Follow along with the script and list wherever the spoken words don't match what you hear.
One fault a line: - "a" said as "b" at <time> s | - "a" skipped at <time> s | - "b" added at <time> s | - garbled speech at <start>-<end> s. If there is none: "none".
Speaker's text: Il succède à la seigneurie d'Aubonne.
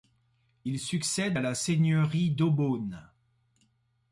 none